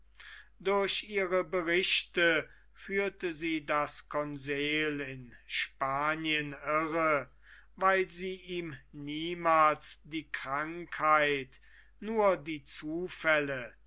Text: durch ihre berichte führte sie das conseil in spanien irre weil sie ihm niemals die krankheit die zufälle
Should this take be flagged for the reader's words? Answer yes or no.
yes